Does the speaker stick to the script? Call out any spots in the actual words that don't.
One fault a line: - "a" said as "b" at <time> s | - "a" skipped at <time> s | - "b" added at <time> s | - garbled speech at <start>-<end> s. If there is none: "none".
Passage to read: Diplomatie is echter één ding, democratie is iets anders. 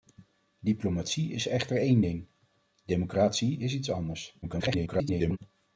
- garbled speech at 4.4-5.4 s